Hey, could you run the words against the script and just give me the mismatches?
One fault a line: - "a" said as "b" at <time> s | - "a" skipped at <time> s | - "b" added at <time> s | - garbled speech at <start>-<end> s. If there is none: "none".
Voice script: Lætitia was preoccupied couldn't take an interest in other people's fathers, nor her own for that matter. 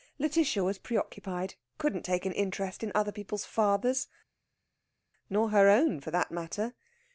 none